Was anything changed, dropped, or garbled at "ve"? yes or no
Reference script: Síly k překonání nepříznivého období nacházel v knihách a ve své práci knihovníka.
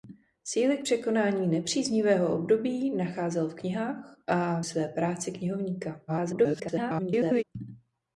yes